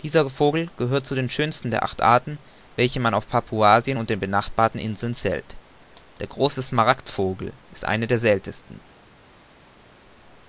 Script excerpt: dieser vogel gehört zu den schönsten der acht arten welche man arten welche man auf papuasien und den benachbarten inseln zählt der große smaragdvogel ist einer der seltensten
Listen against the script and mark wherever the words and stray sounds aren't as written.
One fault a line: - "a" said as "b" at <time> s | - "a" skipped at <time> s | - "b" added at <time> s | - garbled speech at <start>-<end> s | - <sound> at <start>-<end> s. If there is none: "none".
- "arten welche man" skipped at 3.1 s